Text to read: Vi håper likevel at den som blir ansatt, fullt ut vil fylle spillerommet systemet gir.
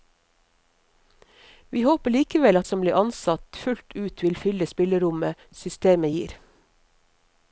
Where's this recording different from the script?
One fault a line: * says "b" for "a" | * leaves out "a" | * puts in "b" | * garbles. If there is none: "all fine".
* leaves out "den"